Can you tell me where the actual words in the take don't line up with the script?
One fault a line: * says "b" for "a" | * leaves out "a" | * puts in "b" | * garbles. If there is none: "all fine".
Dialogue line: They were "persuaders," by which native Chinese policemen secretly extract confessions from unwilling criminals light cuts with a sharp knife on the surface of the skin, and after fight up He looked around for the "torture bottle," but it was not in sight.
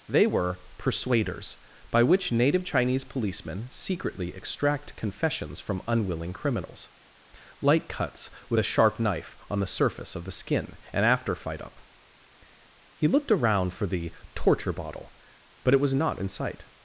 all fine